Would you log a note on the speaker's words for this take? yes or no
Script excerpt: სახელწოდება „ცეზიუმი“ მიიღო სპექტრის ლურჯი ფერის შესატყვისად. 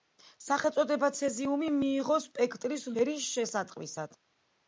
yes